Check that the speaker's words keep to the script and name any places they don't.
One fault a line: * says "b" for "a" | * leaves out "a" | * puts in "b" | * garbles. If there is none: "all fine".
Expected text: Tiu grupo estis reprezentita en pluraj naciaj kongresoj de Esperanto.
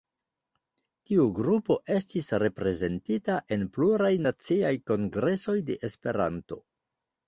all fine